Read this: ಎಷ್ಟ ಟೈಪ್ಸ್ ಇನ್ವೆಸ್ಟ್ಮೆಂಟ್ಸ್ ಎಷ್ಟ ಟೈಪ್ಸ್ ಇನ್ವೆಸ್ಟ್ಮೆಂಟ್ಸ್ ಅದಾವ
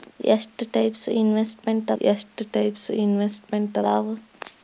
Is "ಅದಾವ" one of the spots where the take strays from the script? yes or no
no